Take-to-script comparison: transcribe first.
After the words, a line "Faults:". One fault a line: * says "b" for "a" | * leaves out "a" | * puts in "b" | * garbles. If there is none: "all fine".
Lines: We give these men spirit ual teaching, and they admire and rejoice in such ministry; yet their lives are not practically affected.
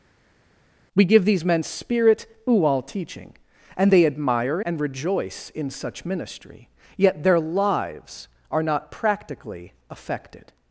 We give these men spirit ual teaching, and they admire and rejoice in such ministry; yet their lives are not practically affected.
Faults:
all fine